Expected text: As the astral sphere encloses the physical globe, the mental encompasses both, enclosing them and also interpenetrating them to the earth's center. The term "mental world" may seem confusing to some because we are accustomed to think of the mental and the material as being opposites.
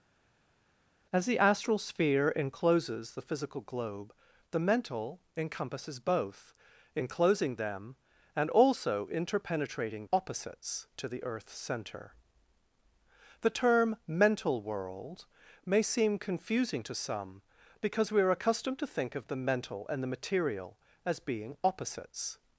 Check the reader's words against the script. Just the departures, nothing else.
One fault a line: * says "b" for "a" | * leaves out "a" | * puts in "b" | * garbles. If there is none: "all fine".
* says "opposites" for "them"